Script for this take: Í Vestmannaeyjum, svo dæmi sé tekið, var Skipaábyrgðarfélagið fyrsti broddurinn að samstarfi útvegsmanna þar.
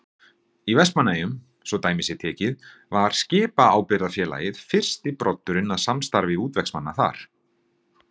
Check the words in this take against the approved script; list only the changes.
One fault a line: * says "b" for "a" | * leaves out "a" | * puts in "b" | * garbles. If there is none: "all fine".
all fine